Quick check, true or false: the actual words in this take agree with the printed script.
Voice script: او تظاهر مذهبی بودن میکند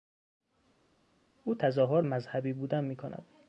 true